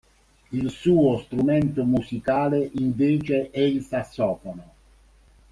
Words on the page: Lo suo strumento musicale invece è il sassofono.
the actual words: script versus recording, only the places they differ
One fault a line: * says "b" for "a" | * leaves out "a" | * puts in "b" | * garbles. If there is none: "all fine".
* says "Il" for "Lo"